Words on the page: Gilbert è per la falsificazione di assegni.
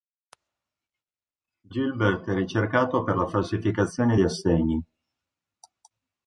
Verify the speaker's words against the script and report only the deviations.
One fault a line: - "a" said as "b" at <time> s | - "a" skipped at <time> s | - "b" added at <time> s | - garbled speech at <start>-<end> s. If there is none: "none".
- "ricercato" added at 2.3 s